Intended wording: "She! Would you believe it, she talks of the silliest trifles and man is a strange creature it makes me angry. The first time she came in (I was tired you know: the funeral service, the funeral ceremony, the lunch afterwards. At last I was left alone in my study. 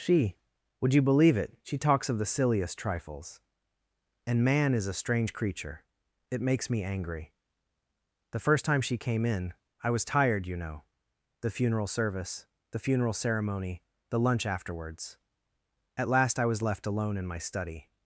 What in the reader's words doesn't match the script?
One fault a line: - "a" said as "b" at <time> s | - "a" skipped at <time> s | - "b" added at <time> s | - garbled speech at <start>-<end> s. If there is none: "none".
none